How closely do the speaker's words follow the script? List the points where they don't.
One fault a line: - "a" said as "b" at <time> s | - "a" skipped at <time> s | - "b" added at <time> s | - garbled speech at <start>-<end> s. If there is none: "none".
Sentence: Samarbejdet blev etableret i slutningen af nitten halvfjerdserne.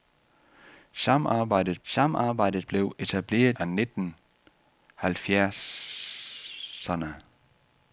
- "samarbejdet" added at 1.8 s
- "i slutningen" skipped at 3.6 s